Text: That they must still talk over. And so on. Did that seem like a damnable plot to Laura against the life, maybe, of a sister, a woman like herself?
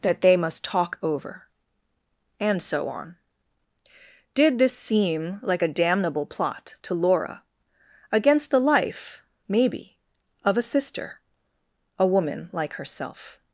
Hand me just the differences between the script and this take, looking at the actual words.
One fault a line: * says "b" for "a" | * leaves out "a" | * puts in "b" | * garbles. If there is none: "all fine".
* leaves out "still"
* says "this" for "that"